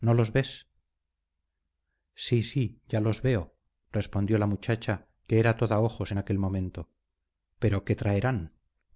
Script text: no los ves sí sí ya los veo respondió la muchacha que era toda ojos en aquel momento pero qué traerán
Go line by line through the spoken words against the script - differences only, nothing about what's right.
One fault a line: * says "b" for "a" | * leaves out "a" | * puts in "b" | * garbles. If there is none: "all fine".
all fine